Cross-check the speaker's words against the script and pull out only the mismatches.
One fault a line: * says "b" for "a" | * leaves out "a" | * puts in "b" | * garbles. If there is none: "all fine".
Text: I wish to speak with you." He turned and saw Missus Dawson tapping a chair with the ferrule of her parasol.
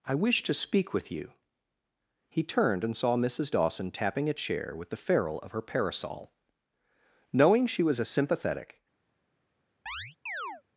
* puts in "Knowing she was a sympathetic"